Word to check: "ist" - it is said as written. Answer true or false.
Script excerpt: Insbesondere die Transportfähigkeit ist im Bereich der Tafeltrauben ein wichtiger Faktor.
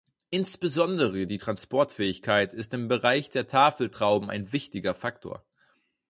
true